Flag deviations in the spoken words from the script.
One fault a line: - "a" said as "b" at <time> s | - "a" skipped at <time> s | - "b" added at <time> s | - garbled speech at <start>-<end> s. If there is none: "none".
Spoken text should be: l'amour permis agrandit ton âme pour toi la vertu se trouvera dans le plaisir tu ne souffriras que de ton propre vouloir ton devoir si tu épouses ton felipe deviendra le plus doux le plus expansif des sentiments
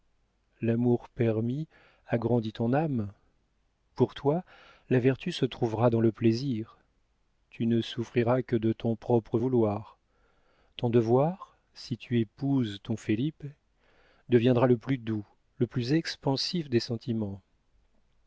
none